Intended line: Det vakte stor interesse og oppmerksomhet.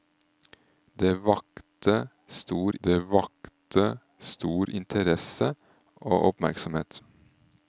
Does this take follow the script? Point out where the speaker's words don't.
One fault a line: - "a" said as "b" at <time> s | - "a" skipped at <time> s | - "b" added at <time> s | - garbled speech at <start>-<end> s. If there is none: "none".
- "det vakte stor" added at 2.8 s